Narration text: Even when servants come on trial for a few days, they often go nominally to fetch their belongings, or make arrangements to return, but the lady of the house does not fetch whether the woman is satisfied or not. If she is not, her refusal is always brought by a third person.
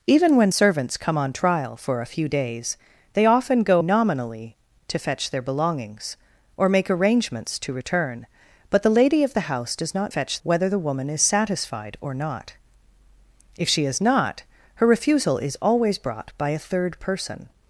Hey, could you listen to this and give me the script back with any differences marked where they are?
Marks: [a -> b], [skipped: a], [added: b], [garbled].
Even when servants come on trial for a few days, they often go nominally to fetch their belongings, or make arrangements to return, but the lady of the house does not fetch whether the woman is satisfied or not. If she is not, her refusal is always brought by a third person.